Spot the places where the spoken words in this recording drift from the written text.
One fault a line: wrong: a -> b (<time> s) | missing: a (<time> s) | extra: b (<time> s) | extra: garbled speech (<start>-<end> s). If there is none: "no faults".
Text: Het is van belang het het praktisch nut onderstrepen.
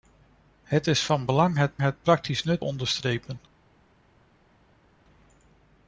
no faults